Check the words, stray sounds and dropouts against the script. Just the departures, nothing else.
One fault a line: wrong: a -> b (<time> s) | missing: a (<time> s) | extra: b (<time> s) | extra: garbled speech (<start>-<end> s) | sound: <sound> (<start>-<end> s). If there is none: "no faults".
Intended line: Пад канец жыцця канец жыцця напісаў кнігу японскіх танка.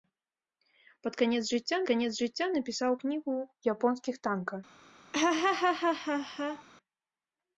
sound: laugh (5.1-6.6 s)